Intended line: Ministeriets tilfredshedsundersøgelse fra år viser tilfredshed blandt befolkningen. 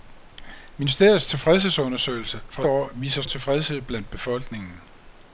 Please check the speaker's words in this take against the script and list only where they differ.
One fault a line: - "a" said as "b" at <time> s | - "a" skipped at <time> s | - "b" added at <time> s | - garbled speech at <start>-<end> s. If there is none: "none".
none